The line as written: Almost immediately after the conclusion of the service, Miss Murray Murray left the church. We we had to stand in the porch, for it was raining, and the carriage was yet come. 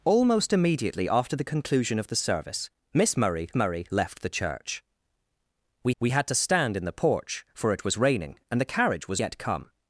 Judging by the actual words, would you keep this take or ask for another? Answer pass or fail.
pass